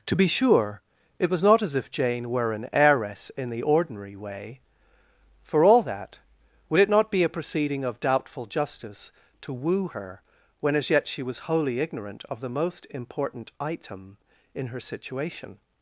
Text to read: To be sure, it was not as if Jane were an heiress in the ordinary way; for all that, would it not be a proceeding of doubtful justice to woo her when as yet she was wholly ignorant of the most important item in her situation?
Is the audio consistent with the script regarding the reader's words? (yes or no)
yes